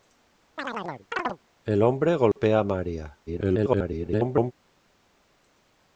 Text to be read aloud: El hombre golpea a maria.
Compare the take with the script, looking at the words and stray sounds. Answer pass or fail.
fail